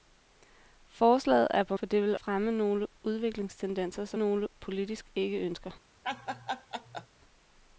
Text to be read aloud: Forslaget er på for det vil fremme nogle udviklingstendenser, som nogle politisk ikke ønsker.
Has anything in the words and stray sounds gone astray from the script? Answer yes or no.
yes